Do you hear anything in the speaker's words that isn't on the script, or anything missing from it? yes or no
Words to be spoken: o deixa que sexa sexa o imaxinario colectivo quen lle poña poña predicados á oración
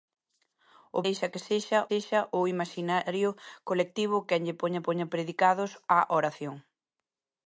no